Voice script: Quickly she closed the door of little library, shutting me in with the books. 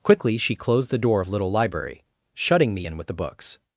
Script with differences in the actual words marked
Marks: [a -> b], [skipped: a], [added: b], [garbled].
Quickly she closed the door of little library, shutting me in with the books.